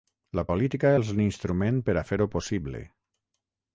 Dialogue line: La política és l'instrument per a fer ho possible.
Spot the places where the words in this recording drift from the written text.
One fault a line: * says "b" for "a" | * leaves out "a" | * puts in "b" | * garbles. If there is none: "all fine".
all fine